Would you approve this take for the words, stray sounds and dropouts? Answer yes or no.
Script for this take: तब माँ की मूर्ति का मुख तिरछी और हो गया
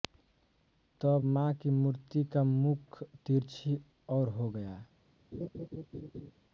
no